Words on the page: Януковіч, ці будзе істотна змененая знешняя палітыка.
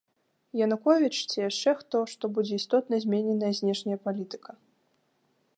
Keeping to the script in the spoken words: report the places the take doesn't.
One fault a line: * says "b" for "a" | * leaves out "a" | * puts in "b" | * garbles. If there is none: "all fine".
* puts in "яшчэ хто што"